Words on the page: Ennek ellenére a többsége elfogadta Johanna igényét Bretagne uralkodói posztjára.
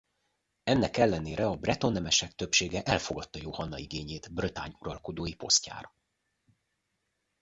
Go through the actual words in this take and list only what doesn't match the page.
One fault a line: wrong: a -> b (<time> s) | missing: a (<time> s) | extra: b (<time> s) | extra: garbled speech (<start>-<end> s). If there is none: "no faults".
extra: breton nemesek (1.6 s)